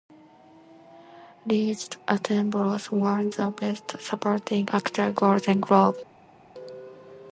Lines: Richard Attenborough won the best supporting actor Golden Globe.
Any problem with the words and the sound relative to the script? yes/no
no